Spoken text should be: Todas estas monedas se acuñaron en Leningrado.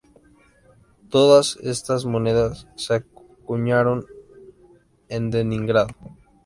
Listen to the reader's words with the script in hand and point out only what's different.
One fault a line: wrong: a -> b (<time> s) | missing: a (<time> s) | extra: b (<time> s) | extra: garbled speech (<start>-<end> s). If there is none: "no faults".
no faults